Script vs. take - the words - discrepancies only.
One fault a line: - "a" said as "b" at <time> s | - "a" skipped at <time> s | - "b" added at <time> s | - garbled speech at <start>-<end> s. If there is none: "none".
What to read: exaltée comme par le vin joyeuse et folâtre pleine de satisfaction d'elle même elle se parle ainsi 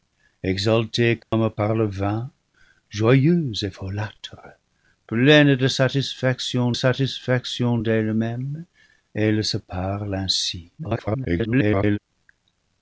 - "satisfaction" added at 6.7 s
- garbled speech at 10.8-12.0 s